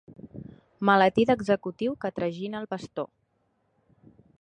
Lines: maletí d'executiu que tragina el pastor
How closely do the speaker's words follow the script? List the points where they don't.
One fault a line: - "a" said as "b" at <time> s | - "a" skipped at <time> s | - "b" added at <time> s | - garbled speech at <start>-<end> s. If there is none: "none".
none